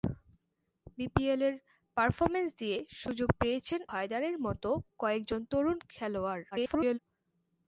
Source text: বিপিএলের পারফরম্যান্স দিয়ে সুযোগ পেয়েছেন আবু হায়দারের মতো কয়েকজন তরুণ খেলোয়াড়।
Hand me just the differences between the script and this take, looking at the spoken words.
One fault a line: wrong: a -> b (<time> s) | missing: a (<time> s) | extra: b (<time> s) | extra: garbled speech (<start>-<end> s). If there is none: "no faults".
missing: আবু (3.8 s)
extra: garbled speech (6.5-7.0 s)